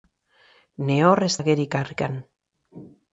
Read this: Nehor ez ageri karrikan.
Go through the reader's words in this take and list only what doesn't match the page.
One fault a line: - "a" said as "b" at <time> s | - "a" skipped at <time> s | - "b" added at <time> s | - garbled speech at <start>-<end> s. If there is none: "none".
none